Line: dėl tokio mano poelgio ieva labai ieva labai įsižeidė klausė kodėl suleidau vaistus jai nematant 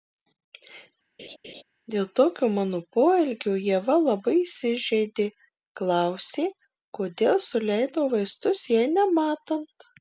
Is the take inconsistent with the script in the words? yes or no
yes